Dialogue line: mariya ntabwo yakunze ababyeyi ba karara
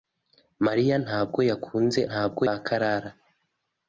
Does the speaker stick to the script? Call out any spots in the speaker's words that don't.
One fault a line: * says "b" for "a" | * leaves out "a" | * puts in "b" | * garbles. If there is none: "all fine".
* says "ntabwo" for "ababyeyi"